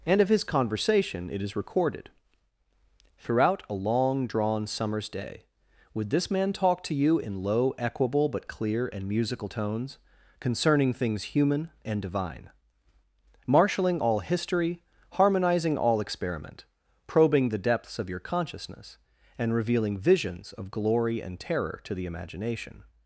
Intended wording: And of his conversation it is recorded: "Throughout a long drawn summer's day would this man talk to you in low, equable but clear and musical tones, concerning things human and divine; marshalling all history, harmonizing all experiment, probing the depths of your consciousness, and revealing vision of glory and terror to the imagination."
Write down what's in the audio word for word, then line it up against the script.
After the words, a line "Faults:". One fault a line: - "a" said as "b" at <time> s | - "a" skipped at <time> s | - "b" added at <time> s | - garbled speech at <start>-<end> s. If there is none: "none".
And of his conversation it is recorded: "Throughout a long drawn summer's day would this man talk to you in low, equable but clear and musical tones, concerning things human and divine; marshalling all history, harmonizing all experiment, probing the depths of your consciousness, and revealing visions of glory and terror to the imagination."
Faults:
- "vision" said as "visions" at 20.0 s